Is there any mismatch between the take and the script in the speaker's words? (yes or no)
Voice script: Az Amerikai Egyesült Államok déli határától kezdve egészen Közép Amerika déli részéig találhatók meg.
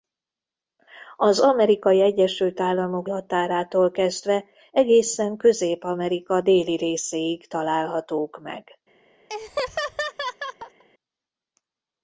yes